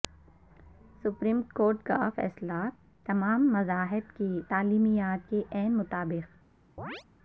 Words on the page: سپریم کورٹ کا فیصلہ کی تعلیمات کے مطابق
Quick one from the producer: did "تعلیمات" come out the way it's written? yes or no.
yes